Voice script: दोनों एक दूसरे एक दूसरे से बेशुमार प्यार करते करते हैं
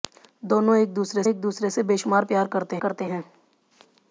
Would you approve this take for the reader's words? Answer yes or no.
yes